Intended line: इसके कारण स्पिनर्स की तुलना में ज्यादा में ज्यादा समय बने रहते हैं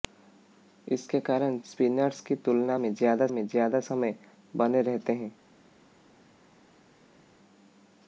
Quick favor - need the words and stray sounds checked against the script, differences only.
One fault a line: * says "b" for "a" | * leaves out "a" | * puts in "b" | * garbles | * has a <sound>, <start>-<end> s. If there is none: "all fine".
all fine